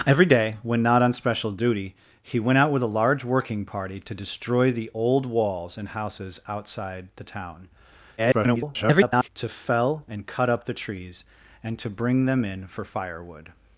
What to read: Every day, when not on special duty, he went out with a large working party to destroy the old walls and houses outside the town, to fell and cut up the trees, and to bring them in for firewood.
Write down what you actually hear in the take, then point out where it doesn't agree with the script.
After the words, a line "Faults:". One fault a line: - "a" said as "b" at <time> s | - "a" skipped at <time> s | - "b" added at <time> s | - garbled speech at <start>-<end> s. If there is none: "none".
Every day, when not on special duty, he went out with a large working party to destroy the old walls and houses outside the town, [garbled] to fell and cut up the trees, and to bring them in for firewood.
Faults:
- garbled speech at 8.2-9.3 s